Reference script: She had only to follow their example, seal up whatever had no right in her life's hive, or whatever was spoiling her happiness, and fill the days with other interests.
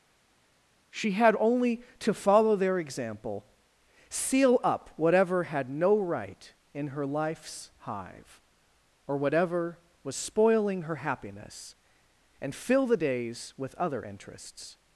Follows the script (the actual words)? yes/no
yes